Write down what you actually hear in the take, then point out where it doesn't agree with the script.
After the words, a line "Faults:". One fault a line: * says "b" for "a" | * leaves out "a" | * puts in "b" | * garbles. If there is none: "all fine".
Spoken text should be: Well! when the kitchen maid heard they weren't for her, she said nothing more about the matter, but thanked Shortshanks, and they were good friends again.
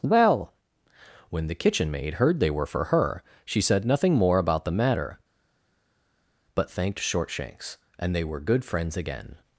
Well! when the kitchen maid heard they were for her, she said nothing more about the matter, but thanked Shortshanks, and they were good friends again.
Faults:
* says "were" for "weren't"